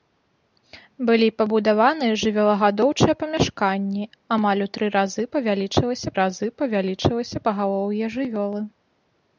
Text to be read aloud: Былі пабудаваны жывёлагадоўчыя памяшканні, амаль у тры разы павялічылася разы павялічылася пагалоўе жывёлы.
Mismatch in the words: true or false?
false